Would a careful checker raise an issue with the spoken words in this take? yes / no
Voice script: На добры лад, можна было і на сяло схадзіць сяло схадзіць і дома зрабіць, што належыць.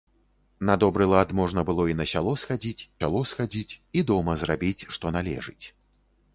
no